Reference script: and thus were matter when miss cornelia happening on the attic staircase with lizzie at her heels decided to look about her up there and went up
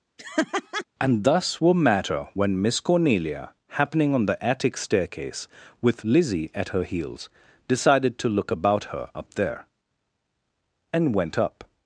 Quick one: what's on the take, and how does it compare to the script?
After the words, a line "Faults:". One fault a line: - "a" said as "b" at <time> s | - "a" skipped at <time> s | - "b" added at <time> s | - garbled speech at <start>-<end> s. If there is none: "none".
and thus were matter when miss cornelia happening on the attic staircase with lizzie at her heels decided to look about her up there and went up
Faults:
none